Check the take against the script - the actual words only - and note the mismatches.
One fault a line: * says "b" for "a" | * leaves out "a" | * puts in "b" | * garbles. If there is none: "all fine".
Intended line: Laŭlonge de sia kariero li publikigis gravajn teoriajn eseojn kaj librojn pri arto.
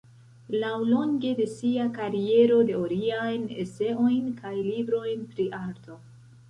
* leaves out "li publikigis gravajn"